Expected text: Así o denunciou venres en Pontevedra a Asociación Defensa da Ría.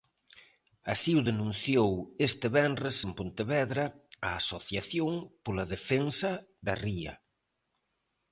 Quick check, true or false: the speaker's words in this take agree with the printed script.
false